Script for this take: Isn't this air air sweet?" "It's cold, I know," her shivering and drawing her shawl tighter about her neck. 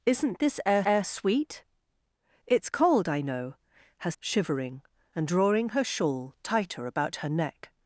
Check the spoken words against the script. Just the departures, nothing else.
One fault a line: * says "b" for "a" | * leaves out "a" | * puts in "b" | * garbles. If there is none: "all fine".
all fine